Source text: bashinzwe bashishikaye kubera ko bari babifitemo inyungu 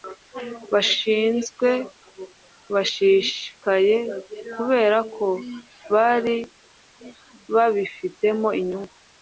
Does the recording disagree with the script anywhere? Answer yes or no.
no